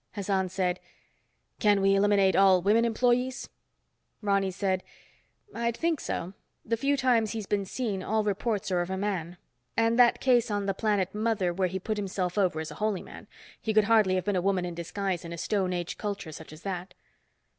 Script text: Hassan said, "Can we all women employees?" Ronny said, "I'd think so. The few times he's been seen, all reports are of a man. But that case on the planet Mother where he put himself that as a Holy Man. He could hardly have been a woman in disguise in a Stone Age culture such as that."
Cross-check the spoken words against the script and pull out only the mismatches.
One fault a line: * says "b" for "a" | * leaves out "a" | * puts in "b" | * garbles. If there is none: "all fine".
* puts in "eliminate"
* says "And" for "But"
* says "over" for "that"